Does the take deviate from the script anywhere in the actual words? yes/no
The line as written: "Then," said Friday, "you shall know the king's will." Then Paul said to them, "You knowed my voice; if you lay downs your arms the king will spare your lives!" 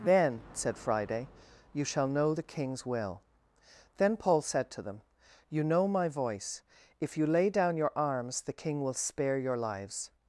yes